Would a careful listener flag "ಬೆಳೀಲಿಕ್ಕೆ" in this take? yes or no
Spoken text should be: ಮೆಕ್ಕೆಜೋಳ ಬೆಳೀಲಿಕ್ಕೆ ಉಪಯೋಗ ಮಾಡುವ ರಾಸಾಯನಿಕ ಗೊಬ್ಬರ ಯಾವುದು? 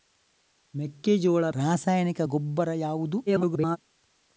yes